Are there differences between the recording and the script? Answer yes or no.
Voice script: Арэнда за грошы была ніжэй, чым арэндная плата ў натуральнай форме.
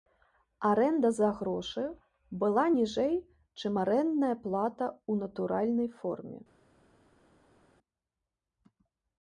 no